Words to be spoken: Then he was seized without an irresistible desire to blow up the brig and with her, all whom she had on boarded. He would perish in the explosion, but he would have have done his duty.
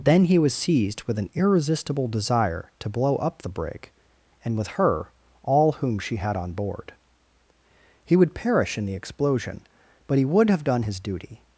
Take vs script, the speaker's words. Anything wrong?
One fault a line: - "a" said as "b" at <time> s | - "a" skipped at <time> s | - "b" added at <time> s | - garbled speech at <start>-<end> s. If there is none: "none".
- "without" said as "with" at 1.0 s
- "boarded" said as "board" at 6.5 s
- "have" skipped at 10.6 s